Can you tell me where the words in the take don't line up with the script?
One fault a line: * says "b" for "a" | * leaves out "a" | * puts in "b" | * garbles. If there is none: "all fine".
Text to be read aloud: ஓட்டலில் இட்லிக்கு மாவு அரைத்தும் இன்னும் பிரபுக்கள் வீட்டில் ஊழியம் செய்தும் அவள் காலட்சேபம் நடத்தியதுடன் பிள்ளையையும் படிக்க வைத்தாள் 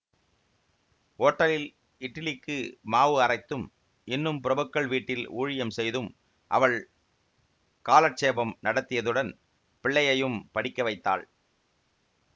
all fine